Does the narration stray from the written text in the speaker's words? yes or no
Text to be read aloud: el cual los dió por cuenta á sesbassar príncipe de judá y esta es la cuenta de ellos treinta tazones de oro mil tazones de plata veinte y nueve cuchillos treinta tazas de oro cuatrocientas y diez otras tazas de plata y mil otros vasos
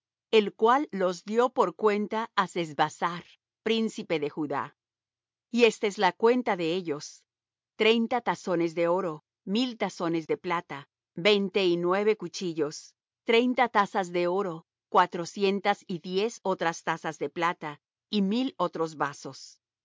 no